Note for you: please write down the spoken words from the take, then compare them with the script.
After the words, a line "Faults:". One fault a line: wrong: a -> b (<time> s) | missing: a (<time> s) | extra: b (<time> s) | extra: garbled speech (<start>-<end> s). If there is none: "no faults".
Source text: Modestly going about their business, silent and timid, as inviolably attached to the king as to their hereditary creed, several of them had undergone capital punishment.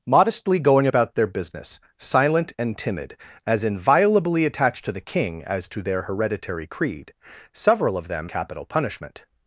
Modestly going about their business, silent and timid, as inviolably attached to the king as to their hereditary creed, several of them capital punishment.
Faults:
missing: had undergone (8.3 s)